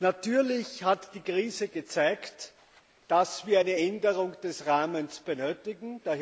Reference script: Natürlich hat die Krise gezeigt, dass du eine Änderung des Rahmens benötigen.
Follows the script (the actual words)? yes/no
no